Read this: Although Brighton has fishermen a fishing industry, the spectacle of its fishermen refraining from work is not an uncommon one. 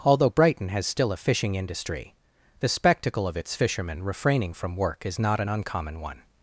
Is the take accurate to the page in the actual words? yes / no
no